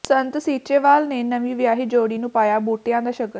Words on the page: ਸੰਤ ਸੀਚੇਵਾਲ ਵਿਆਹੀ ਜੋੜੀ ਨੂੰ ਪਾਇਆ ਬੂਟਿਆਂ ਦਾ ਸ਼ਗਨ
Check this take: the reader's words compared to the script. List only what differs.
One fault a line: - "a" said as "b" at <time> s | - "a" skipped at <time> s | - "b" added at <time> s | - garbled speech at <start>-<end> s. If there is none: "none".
- "ਨੇ ਨਵੀਂ" added at 1.1 s